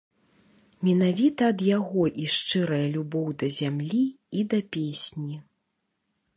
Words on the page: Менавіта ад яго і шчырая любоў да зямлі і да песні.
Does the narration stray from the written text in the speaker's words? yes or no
no